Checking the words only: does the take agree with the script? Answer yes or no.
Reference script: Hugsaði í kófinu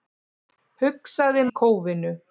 yes